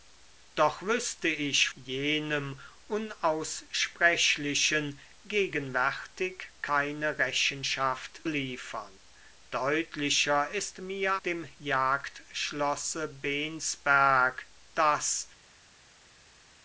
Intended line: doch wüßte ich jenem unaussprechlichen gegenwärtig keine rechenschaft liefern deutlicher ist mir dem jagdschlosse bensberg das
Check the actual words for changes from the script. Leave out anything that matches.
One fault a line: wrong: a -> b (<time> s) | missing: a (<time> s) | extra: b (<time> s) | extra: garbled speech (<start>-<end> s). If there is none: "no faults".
no faults